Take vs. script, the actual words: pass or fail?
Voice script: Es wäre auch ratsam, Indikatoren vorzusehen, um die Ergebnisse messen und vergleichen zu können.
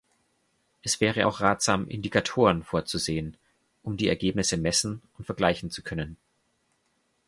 pass